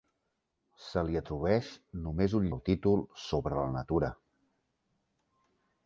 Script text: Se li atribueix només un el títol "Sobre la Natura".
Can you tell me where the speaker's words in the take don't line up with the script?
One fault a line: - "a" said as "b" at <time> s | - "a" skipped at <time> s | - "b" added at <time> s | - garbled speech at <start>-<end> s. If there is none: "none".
none